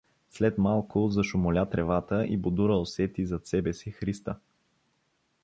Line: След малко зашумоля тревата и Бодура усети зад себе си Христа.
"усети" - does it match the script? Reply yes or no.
yes